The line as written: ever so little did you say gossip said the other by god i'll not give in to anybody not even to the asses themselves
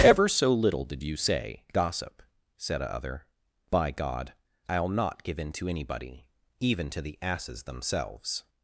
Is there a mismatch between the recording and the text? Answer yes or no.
yes